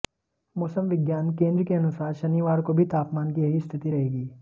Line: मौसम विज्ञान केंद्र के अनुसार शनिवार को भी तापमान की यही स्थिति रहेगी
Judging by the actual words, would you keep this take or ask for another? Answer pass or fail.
pass